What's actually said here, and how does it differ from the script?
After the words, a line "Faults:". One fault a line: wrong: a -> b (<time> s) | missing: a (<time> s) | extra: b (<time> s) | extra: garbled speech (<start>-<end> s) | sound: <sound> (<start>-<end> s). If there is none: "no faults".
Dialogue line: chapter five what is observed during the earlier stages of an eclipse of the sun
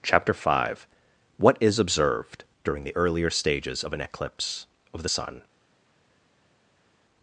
chapter five what is observed during the earlier stages of an eclipse of the sun
Faults:
no faults